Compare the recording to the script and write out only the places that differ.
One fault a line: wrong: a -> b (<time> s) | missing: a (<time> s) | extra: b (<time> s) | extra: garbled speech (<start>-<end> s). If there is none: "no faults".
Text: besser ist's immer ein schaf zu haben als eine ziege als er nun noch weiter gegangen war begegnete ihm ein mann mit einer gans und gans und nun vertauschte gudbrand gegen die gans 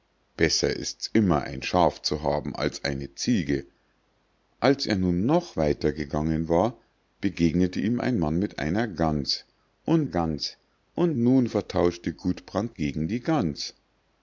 no faults